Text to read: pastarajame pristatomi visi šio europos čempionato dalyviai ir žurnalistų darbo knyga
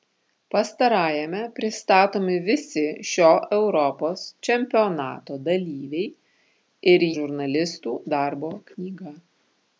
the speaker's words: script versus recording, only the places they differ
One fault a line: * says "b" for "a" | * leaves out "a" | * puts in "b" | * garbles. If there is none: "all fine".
all fine